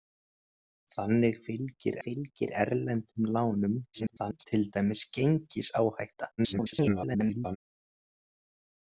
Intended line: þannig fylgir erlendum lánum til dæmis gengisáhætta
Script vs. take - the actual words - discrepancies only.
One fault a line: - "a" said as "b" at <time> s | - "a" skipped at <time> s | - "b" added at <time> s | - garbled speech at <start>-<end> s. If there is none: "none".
- "fylgir" added at 2.1 s
- garbled speech at 3.9-4.5 s
- garbled speech at 6.4-7.6 s